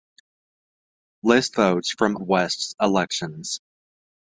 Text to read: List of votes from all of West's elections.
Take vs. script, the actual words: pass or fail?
fail